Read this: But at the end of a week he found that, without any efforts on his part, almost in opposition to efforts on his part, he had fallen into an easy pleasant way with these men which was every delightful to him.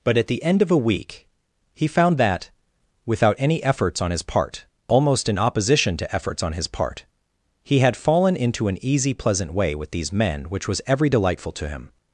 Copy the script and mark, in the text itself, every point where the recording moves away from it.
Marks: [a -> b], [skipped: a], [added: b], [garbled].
But at the end of a week he found that, without any efforts on his part, almost in opposition to efforts on his part, he had fallen into an easy pleasant way with these men which was every delightful to him.